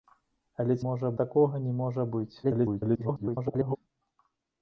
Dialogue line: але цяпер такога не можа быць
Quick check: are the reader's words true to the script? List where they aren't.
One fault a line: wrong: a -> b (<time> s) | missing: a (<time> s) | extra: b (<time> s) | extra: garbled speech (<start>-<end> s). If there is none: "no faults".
wrong: цяпер -> можа (0.9 s)
extra: garbled speech (2.4-3.8 s)